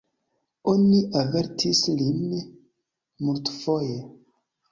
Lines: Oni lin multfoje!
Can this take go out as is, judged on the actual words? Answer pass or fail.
fail